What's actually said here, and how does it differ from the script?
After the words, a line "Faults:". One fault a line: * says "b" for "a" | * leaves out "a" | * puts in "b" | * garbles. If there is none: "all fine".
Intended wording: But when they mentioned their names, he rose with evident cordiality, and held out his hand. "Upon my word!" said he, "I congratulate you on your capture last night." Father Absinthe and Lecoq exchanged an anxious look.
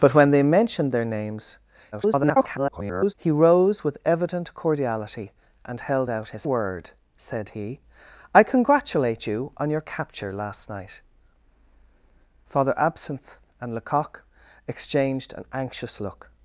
But when they mentioned their names, [garbled] he rose with evident cordiality, and held out his word!" said he, "I congratulate you on your capture last night." Father Absinthe and Lecoq exchanged an anxious look.
Faults:
* garbles
* leaves out "hand Upon my"